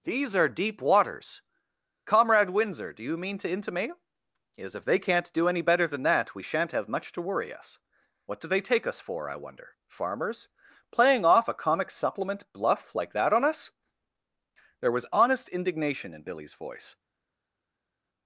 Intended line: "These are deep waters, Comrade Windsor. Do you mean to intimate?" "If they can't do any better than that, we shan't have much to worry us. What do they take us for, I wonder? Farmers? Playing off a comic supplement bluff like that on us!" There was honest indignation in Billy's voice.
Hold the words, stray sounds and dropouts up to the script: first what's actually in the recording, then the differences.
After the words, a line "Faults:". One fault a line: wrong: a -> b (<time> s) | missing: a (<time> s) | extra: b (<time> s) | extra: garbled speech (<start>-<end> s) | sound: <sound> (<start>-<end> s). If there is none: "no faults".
"These are deep waters, Comrade Windsor. Do you mean to intimate?" is "If they can't do any better than that, we shan't have much to worry us. What do they take us for, I wonder? Farmers? Playing off a comic supplement bluff like that on us!" There was honest indignation in Billy's voice.
Faults:
extra: is (4.6 s)